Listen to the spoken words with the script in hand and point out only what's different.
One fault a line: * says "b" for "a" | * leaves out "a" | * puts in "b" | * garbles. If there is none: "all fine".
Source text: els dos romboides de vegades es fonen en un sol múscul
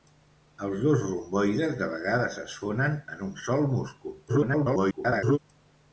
* garbles